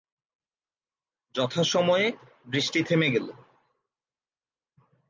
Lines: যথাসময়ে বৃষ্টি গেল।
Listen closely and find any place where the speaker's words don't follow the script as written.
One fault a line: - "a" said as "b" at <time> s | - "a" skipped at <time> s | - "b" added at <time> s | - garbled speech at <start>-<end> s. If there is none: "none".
- "থেমে" added at 2.8 s